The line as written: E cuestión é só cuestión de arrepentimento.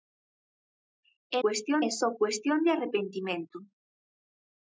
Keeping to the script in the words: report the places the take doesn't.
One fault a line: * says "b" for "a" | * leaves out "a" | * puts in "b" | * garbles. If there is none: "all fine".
all fine